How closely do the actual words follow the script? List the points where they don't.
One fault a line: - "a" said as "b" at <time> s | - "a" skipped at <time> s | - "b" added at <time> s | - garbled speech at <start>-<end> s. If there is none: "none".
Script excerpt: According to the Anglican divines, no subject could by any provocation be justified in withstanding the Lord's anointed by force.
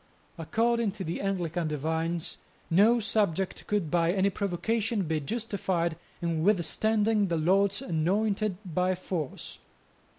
none